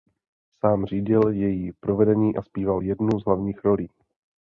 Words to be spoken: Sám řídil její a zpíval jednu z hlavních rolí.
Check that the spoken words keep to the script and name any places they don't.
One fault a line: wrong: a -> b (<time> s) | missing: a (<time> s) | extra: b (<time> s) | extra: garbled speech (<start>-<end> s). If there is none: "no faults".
extra: provedení (1.7 s)